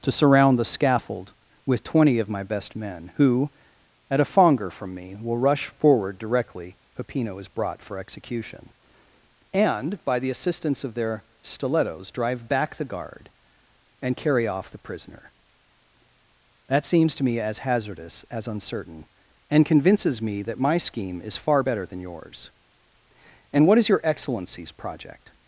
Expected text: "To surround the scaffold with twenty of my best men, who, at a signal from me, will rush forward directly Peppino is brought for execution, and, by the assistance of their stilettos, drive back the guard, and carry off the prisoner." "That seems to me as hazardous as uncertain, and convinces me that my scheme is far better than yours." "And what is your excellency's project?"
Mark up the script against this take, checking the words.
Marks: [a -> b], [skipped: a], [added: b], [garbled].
"To surround the scaffold with twenty of my best men, who, at a [signal -> fonger] from me, will rush forward directly Peppino is brought for execution, and, by the assistance of their stilettos, drive back the guard, and carry off the prisoner." "That seems to me as hazardous as uncertain, and convinces me that my scheme is far better than yours." "And what is your excellency's project?"